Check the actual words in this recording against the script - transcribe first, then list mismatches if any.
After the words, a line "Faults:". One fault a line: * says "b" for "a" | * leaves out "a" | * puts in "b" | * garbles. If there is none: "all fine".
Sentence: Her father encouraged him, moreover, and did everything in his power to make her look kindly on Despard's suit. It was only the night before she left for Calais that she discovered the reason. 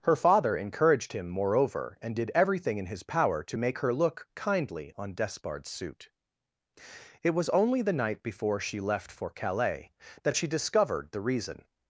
Her father encouraged him, moreover, and did everything in his power to make her look kindly on Despard's suit. It was only the night before she left for Calais that she discovered the reason.
Faults:
all fine